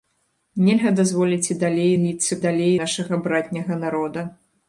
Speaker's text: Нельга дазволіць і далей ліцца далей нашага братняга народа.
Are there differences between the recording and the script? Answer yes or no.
no